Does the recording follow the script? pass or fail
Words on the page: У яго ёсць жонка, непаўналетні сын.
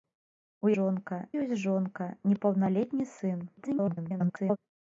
fail